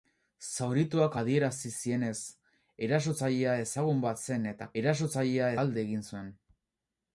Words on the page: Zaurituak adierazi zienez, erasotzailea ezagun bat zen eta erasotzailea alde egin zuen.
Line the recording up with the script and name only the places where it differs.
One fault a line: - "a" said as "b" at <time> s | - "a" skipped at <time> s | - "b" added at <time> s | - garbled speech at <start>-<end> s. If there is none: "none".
none